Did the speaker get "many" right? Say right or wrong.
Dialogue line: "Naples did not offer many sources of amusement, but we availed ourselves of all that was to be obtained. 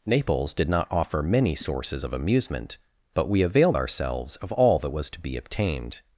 right